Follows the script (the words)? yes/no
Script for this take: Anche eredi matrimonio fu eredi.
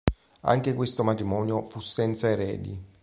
no